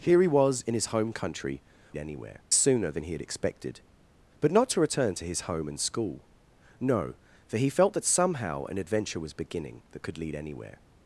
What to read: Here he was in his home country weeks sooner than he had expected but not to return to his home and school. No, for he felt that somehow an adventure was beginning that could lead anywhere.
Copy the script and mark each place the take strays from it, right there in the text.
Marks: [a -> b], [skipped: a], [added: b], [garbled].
Here he was in his home country [weeks -> anywhere] sooner than he had expected but not to return to his home and school. No, for he felt that somehow an adventure was beginning that could lead anywhere.